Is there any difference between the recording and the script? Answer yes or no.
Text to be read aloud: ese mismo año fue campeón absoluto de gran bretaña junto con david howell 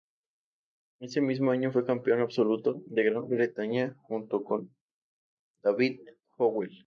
no